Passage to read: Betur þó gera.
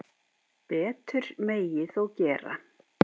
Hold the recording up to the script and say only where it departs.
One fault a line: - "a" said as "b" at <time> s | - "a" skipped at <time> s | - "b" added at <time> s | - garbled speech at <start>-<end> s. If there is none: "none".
- "megi" added at 1.5 s